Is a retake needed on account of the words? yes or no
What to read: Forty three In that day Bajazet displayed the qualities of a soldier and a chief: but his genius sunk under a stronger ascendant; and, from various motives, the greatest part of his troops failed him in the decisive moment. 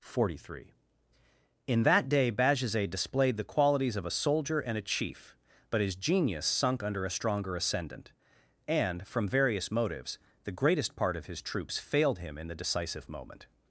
no